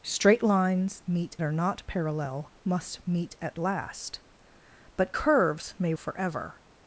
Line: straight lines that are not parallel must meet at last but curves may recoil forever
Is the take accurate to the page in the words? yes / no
no